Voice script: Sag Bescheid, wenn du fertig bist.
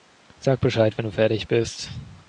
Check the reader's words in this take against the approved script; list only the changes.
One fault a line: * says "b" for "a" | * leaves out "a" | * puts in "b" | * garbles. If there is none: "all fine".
all fine